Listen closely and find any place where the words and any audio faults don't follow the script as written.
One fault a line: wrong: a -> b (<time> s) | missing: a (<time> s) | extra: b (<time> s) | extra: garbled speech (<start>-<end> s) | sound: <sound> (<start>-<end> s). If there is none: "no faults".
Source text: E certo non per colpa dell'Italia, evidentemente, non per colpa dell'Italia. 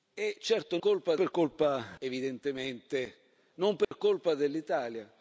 wrong: non -> colpa (0.8 s)
missing: dell'Italia (1.8 s)
sound: dropout (3.8-3.9 s)